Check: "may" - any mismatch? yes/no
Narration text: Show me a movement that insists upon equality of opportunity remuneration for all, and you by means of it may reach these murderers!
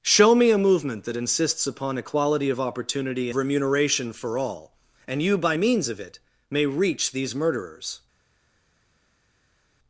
no